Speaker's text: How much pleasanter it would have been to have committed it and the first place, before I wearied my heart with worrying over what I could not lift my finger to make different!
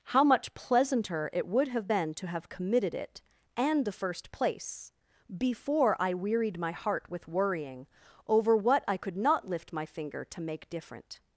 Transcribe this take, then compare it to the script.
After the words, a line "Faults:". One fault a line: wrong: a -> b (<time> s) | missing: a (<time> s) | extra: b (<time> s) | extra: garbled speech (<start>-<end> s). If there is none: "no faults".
How much pleasanter it would have been to have committed it and the first place, before I wearied my heart with worrying over what I could not lift my finger to make different!
Faults:
no faults